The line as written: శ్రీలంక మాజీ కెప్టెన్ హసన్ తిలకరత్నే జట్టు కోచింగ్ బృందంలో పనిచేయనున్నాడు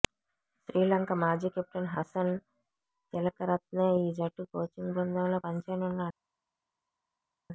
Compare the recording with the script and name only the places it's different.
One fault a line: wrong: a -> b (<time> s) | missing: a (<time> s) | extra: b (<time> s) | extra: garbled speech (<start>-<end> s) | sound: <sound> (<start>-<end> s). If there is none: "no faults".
extra: ఈ (4.0 s)